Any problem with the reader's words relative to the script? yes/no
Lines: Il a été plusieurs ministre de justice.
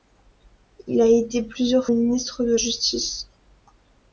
no